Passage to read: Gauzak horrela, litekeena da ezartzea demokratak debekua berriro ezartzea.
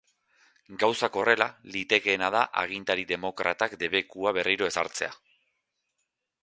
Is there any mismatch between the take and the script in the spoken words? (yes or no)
yes